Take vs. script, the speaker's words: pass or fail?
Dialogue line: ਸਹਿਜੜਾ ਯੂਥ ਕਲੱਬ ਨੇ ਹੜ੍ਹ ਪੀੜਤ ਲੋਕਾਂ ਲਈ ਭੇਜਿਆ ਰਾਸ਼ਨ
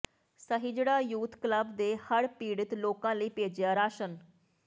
pass